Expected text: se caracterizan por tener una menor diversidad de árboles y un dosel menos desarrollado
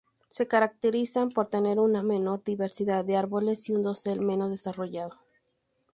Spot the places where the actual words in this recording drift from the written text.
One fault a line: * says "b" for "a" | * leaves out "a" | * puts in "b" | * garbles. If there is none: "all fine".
all fine